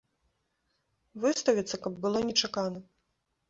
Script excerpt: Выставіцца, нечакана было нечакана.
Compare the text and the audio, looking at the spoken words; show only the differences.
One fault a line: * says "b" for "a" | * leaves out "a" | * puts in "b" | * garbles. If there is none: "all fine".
* says "каб" for "нечакана"